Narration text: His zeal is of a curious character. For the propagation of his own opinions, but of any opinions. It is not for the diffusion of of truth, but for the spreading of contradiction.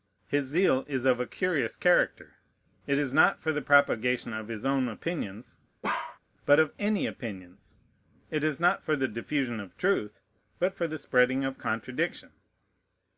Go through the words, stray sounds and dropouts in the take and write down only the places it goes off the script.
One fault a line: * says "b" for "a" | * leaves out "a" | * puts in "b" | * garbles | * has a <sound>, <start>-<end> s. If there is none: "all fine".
* puts in "It is not"
* has a bark, 5.8-6.2 s
* leaves out "of"